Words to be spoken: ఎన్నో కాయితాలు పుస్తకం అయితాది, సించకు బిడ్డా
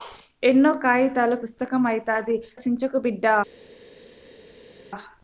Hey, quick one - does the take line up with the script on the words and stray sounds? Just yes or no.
yes